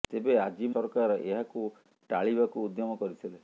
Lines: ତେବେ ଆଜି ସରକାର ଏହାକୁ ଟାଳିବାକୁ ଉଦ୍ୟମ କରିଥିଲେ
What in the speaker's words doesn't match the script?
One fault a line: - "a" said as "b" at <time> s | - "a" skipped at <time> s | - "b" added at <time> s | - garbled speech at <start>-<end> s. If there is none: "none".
none